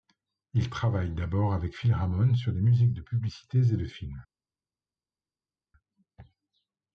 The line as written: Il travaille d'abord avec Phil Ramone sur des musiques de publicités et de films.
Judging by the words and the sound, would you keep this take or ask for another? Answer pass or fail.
pass